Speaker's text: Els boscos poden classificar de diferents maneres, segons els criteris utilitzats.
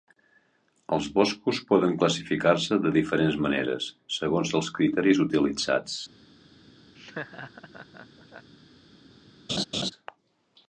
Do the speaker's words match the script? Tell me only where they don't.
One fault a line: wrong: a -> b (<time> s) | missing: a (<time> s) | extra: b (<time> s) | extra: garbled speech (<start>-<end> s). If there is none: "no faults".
extra: se (2.7 s)